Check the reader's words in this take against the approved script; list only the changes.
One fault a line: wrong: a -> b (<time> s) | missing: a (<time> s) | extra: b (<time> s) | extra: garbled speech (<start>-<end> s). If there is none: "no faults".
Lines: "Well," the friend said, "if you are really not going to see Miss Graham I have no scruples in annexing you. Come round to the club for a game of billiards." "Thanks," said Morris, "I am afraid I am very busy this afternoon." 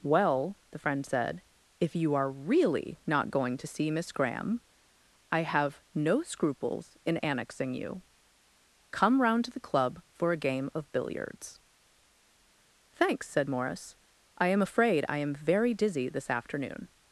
wrong: busy -> dizzy (15.7 s)